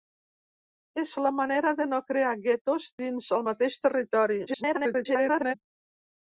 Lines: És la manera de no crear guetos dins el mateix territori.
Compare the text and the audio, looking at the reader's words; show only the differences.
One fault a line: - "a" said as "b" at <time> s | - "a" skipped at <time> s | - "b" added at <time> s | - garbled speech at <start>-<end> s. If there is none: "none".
- garbled speech at 4.5-5.5 s